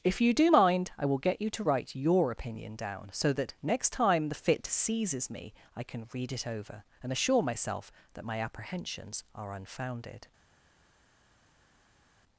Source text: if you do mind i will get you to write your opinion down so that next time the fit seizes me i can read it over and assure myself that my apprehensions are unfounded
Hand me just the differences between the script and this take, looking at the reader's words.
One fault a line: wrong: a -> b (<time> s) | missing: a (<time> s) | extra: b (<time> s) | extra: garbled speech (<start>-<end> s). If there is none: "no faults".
no faults